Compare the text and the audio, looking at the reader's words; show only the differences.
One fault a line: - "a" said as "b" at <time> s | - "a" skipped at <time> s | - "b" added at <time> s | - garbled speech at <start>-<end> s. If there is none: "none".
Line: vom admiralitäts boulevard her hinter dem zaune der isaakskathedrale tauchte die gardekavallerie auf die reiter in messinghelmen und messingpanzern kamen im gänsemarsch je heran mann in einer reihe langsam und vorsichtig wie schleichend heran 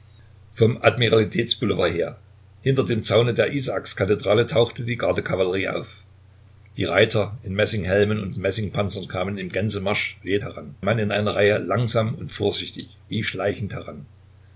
none